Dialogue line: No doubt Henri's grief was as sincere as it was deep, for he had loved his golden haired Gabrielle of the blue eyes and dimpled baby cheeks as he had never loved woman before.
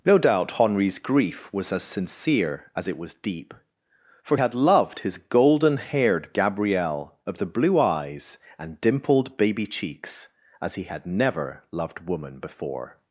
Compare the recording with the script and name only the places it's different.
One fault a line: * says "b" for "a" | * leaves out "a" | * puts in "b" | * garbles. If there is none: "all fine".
* leaves out "he"